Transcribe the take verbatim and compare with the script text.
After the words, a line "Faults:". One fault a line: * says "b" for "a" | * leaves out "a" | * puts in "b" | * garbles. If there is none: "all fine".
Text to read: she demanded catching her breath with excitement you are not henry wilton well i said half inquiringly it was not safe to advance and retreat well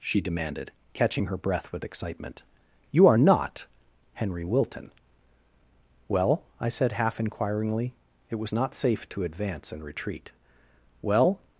she demanded catching her breath with excitement you are not henry wilton well i said half inquiringly it was not safe to advance and retreat well
Faults:
all fine